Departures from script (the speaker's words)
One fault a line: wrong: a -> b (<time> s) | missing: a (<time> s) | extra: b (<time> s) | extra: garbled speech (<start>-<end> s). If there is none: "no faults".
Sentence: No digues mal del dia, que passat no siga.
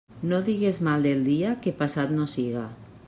no faults